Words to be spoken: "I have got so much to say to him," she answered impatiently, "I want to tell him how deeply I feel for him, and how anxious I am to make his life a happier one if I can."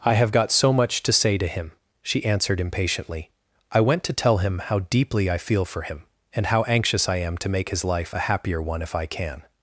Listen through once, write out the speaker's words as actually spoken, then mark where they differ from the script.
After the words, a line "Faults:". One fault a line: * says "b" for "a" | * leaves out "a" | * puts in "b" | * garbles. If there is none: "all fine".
"I have got so much to say to him," she answered impatiently, "I went to tell him how deeply I feel for him, and how anxious I am to make his life a happier one if I can."
Faults:
* says "went" for "want"